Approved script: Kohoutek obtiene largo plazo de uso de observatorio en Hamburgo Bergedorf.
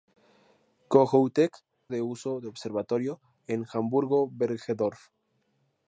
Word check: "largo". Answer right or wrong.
wrong